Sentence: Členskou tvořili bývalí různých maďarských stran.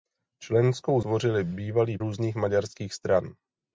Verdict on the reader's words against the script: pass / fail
pass